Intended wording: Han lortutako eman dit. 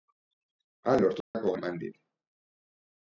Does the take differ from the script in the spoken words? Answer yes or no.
no